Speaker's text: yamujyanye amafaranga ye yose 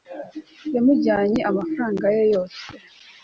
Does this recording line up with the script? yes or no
yes